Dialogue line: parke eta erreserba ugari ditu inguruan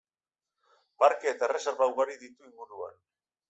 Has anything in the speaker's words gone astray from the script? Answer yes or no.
no